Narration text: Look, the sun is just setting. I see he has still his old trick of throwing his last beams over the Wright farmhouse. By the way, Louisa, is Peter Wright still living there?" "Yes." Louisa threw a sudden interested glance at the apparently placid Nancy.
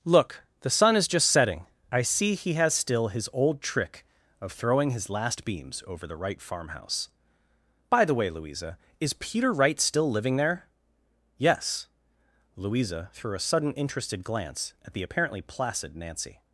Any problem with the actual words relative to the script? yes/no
no